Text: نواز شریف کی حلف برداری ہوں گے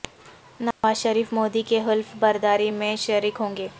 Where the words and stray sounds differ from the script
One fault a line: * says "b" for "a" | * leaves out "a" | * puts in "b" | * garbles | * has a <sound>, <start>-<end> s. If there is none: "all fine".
* has a dropout, 0.7-0.8 s
* puts in "مودی"
* puts in "میں شریک"